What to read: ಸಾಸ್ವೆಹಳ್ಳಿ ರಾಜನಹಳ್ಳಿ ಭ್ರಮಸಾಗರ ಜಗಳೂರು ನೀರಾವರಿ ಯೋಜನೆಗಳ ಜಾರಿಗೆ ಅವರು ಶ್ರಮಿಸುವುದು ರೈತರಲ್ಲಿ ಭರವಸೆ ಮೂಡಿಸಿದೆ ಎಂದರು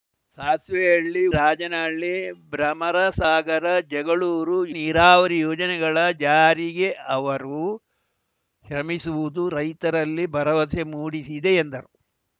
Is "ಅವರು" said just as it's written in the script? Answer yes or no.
yes